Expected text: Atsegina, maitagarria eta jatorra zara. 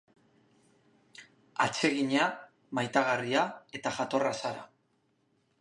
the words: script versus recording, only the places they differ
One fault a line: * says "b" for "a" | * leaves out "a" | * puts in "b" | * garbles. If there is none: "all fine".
all fine